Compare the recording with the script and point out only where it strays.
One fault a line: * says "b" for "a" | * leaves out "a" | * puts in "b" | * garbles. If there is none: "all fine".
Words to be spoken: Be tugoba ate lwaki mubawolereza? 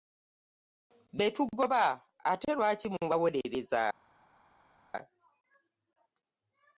all fine